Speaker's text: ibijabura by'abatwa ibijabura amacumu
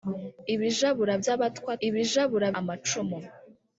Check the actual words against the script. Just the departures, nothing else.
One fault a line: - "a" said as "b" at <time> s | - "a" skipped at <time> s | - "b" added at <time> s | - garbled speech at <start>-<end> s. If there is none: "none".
none